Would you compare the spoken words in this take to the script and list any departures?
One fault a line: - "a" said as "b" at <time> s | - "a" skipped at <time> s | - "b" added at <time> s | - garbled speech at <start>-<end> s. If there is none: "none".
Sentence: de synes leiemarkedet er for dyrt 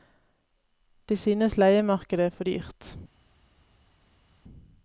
none